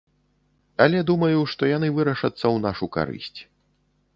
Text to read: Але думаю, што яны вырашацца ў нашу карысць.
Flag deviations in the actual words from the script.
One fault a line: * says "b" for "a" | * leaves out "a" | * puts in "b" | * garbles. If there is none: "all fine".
all fine